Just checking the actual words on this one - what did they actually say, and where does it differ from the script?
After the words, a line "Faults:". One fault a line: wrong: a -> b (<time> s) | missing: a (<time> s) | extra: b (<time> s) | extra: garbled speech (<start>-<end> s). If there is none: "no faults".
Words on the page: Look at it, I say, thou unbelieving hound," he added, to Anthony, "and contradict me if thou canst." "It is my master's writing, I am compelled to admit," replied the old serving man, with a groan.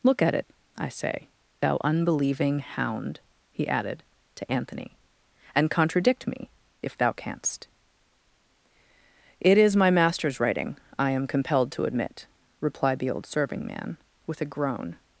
Look at it, I say, thou unbelieving hound," he added, to Anthony, "and contradict me if thou canst." "It is my master's writing, I am compelled to admit," replied the old serving man, with a groan.
Faults:
no faults